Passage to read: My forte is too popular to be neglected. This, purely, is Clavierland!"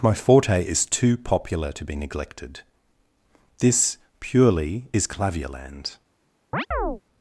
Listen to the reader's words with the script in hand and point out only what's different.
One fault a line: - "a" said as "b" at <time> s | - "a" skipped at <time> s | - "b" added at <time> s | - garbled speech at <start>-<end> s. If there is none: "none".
none